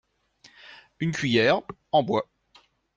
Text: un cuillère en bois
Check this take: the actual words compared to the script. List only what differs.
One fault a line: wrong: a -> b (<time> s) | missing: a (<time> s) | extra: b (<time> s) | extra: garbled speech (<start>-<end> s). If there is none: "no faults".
wrong: un -> une (1.0 s)